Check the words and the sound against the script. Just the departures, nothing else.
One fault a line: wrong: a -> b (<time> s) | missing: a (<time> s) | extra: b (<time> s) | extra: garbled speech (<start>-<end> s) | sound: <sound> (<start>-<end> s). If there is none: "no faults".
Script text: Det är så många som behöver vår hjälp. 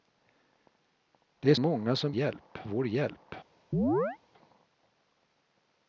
missing: så (1.6 s)
wrong: behöver -> hjälp (2.1 s)
sound: chirp (3.7-4.2 s)